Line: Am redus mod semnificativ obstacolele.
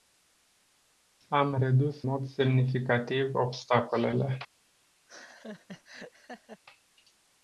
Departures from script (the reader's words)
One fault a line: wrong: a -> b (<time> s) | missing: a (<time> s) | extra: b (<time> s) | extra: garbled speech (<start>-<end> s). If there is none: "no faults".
no faults